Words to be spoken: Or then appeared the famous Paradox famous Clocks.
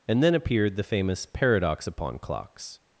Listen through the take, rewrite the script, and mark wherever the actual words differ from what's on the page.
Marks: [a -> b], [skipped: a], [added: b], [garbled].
[Or -> And] then appeared the famous Paradox [famous -> upon] Clocks.